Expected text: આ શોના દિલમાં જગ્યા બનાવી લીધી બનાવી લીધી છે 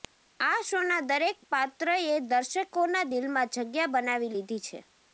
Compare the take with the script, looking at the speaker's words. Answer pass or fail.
fail